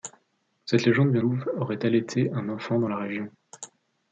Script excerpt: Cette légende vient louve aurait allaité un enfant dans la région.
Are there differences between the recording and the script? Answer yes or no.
no